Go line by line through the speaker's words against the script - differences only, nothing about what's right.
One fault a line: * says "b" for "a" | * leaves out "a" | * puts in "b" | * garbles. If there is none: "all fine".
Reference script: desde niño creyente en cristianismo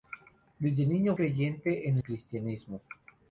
all fine